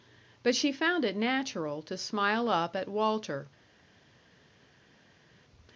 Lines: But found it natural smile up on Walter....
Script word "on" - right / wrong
wrong